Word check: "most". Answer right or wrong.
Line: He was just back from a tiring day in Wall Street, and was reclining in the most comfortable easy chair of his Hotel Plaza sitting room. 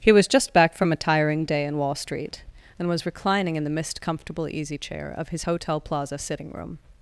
wrong